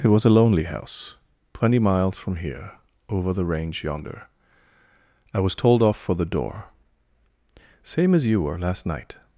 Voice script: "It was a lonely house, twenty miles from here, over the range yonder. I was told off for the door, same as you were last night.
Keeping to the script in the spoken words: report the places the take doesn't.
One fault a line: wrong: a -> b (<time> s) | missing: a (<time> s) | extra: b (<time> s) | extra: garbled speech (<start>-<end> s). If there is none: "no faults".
no faults